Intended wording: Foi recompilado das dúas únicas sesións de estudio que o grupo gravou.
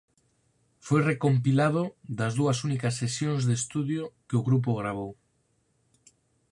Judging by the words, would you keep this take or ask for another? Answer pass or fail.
pass